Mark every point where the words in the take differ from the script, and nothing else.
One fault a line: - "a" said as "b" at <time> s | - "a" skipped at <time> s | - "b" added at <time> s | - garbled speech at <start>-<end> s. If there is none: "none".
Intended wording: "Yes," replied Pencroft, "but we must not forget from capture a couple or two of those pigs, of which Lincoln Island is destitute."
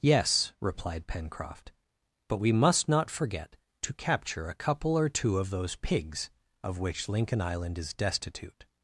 - "from" said as "to" at 3.8 s